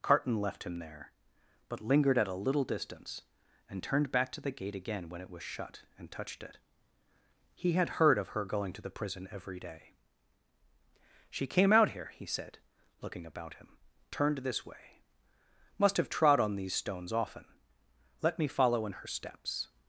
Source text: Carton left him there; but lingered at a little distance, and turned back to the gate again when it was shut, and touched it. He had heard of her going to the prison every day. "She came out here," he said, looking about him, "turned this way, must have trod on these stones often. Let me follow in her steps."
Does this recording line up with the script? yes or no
yes